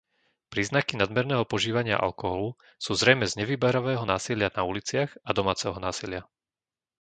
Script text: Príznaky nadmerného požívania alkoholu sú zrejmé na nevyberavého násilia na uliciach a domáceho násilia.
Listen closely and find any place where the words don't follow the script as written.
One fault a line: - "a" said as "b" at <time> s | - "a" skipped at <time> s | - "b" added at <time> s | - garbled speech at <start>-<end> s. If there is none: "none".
- "na" said as "z" at 3.3 s